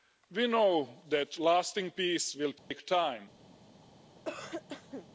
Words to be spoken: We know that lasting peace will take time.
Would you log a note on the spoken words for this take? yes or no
no